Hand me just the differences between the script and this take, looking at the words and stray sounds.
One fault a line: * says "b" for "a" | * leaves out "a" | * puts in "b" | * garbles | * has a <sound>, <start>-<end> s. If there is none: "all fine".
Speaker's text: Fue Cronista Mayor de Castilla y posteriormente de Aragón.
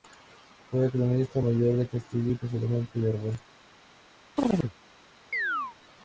* has a chirp, 4.4-4.7 s
* has a chirp, 5.3-5.8 s